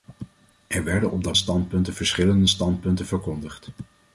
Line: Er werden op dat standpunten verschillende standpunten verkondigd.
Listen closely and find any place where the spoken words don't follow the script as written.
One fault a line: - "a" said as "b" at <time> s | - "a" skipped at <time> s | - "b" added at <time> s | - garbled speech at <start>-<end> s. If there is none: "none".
none